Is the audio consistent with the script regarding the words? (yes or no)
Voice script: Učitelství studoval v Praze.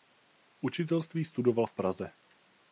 yes